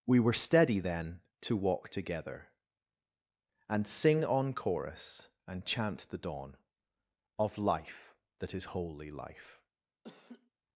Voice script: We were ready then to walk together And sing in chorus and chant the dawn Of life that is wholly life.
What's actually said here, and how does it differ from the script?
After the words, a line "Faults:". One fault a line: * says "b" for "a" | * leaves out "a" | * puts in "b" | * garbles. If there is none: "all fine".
We were steady then to walk together And sing on chorus and chant the dawn Of life that is wholly life.
Faults:
* says "steady" for "ready"
* says "on" for "in"